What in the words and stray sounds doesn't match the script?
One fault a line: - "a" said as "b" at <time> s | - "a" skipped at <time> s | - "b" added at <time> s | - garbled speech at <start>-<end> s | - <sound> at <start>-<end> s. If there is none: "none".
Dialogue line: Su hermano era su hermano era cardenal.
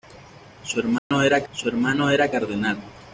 - dropout at 1.0-1.1 s